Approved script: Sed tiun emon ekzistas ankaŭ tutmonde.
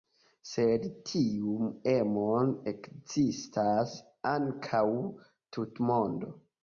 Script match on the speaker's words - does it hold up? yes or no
yes